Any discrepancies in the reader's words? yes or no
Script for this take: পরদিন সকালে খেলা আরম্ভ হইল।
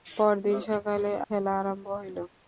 no